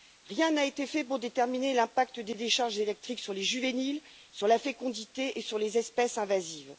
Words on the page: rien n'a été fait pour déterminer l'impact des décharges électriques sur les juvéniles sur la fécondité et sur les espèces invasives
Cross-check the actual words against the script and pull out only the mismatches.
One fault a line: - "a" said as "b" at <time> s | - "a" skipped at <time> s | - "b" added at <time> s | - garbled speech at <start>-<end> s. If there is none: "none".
none